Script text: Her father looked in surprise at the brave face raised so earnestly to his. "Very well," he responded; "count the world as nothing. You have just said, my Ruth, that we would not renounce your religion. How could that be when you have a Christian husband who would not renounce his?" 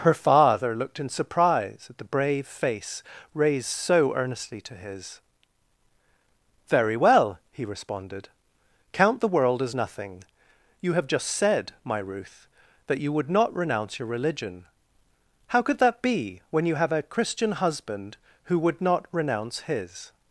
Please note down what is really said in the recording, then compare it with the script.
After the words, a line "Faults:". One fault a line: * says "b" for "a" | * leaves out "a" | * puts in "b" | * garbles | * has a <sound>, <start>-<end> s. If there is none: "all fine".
Her father looked in surprise at the brave face raised so earnestly to his. "Very well," he responded; "count the world as nothing. You have just said, my Ruth, that you would not renounce your religion. How could that be when you have a Christian husband who would not renounce his?"
Faults:
* says "you" for "we"